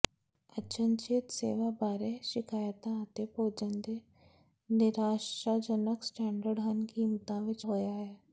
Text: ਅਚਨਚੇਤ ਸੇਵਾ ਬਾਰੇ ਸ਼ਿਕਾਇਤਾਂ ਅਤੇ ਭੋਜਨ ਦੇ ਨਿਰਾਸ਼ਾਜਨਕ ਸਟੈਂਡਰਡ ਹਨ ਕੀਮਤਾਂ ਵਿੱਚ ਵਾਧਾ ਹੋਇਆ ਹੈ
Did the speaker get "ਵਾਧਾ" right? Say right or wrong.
wrong